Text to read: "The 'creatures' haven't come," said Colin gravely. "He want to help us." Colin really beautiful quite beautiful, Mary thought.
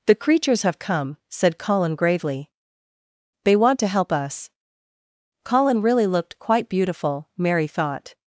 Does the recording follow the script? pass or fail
fail